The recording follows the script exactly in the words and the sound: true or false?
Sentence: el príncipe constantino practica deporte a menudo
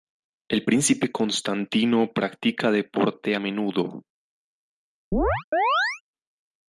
false